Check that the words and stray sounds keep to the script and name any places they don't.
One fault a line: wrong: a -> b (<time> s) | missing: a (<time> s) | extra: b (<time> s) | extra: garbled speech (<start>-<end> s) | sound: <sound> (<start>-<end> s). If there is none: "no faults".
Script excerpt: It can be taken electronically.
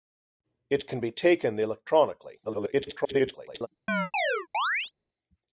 extra: garbled speech (2.4-3.7 s)
sound: chirp (3.9-4.9 s)